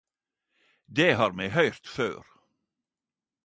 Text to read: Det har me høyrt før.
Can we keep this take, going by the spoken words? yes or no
yes